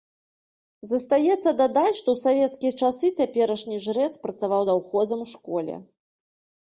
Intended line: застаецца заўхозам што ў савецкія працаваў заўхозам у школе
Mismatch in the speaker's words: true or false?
true